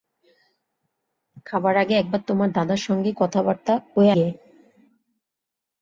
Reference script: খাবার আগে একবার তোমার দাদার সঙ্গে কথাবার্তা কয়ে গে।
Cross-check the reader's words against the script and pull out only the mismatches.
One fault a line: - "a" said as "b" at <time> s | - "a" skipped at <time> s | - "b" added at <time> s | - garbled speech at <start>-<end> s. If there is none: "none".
none